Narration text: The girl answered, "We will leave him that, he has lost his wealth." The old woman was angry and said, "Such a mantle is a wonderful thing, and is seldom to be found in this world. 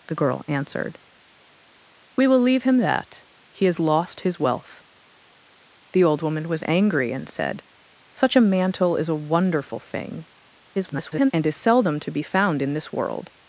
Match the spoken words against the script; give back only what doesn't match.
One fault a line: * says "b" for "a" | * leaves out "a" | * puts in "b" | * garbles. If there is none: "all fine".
* garbles